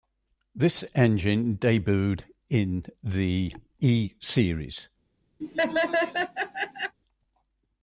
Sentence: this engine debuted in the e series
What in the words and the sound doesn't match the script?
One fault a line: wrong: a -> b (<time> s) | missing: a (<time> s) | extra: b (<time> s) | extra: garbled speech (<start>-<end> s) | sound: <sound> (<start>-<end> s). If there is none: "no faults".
sound: laugh (5.4-7.0 s)